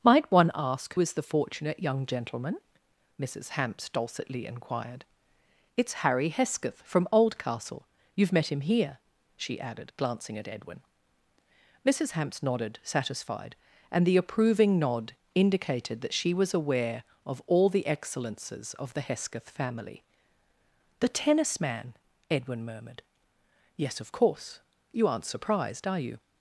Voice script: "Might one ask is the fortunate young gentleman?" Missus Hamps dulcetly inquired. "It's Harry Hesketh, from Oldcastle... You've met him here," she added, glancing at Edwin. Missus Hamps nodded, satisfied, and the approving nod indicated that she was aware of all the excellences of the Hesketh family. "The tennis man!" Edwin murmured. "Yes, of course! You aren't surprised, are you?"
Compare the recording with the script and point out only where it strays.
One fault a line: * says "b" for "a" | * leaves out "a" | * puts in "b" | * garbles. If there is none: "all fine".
all fine